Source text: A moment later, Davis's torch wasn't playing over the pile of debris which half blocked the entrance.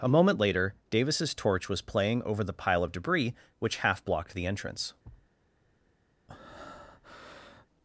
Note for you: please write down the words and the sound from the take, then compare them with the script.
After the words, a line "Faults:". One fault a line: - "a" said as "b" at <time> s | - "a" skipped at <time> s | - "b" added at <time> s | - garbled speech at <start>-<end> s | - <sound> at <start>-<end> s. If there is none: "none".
A moment later, Davis's torch was playing over the pile of debris which half blocked the entrance.
Faults:
- "wasn't" said as "was" at 1.7 s
- thud at 5.0-5.3 s
- breath at 6.3-7.7 s